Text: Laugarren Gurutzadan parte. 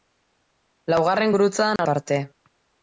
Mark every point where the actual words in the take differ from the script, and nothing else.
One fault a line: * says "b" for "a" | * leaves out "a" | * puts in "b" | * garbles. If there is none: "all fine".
all fine